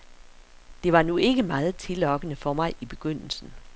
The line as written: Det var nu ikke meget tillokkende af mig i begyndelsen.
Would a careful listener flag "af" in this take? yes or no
yes